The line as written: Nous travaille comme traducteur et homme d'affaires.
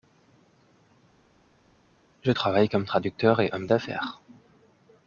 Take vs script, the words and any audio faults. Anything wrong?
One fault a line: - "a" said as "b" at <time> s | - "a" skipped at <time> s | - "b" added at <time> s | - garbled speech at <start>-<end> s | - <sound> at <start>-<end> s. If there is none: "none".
- "Nous" said as "Je" at 2.2 s